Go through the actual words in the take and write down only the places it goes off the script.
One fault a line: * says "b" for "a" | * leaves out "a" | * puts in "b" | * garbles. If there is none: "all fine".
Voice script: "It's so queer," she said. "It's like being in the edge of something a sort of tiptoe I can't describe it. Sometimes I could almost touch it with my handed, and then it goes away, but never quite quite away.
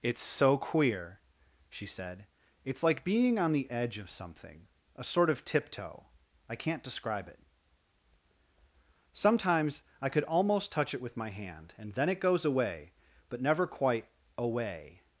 * says "on" for "in"
* says "hand" for "handed"
* leaves out "quite"